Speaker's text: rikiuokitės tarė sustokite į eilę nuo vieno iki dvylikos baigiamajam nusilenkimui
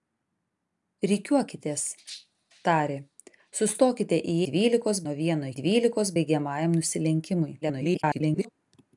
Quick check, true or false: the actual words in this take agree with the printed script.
false